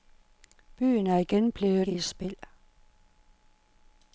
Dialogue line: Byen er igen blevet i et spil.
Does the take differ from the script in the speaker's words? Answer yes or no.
no